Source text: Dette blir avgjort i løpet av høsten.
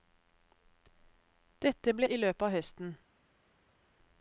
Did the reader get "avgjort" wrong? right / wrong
wrong